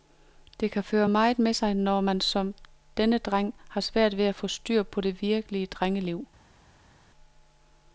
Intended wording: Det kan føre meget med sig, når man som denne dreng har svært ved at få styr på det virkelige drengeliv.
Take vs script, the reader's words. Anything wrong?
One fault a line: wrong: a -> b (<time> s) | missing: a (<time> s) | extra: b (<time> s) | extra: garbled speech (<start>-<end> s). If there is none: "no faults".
no faults